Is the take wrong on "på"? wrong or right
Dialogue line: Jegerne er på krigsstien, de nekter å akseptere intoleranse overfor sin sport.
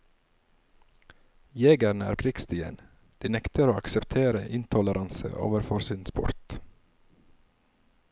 wrong